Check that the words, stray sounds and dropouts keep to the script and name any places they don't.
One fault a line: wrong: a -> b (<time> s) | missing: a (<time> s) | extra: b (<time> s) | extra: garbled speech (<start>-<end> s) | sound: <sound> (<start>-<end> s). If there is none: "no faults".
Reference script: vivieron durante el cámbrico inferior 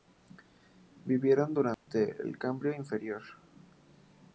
sound: dropout (1.7-1.9 s)